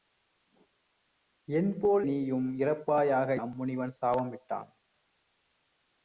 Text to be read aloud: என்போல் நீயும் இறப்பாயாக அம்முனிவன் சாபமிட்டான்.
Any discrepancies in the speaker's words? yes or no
no